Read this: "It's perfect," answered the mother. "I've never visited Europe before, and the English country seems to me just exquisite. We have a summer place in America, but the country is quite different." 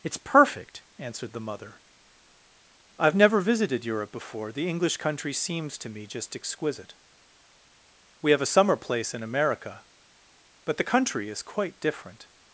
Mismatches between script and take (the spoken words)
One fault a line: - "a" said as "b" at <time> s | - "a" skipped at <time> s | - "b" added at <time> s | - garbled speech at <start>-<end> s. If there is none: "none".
- "and" skipped at 4.5 s